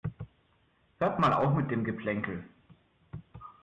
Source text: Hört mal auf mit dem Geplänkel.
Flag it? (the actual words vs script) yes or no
no